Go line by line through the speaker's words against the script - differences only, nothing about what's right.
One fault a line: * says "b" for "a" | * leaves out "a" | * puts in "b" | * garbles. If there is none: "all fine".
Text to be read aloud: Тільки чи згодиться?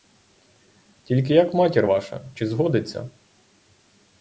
* puts in "як матір ваша"